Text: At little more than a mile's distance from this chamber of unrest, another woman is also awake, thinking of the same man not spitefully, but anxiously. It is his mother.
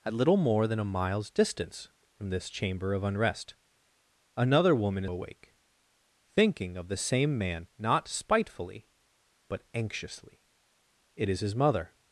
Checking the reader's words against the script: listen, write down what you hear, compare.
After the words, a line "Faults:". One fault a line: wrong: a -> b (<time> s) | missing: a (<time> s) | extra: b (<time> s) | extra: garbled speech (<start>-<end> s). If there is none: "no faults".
At little more than a mile's distance from this chamber of unrest, another woman awake, thinking of the same man not spitefully, but anxiously. It is his mother.
Faults:
missing: is also (5.0 s)